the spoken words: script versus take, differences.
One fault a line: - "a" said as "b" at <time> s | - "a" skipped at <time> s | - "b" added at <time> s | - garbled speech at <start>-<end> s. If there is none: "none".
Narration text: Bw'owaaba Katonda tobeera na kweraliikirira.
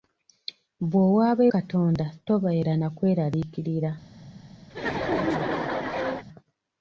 none